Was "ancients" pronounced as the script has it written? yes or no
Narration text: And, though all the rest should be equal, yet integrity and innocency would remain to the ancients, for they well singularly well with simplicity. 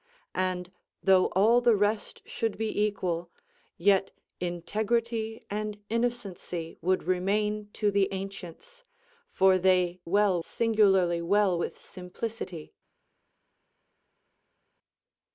yes